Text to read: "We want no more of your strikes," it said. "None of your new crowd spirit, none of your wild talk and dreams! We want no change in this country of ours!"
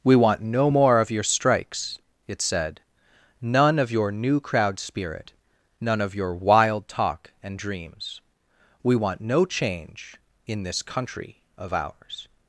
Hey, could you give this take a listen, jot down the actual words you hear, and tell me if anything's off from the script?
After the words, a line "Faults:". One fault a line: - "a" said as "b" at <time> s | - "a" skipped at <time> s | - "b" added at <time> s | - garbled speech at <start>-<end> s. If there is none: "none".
"We want no more of your strikes," it said. "None of your new crowd spirit, none of your wild talk and dreams! We want no change in this country of ours!"
Faults:
none